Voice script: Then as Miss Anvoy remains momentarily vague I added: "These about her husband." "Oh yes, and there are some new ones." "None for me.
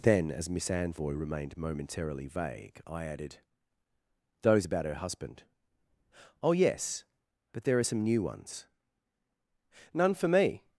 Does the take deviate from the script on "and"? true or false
true